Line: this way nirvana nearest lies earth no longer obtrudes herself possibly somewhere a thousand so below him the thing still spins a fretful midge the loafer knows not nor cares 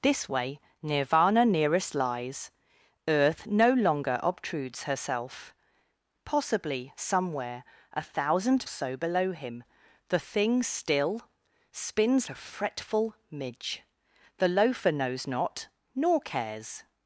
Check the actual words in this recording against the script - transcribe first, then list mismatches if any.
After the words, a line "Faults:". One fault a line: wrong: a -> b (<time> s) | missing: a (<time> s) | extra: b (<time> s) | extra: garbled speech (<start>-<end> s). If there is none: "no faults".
this way nirvana nearest lies earth no longer obtrudes herself possibly somewhere a thousand so below him the thing still spins a fretful midge the loafer knows not nor cares
Faults:
no faults